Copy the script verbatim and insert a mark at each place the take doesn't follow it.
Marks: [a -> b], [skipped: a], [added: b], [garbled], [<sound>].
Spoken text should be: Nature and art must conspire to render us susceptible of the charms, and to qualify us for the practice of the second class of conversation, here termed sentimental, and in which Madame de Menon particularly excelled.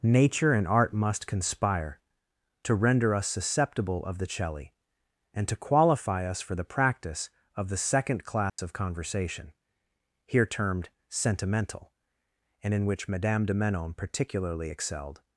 Nature and art must conspire to render us susceptible of the [charms, -> celli] and to qualify us for the practice of the second class [dropout] of conversation, here termed sentimental, and in which Madame de Menon particularly excelled.